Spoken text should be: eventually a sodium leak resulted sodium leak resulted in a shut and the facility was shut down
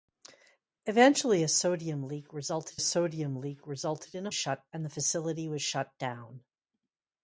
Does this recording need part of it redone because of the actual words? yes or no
no